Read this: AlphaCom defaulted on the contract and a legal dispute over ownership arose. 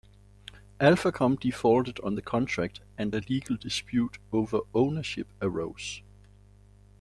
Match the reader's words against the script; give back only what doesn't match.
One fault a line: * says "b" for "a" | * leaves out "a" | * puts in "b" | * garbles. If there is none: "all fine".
all fine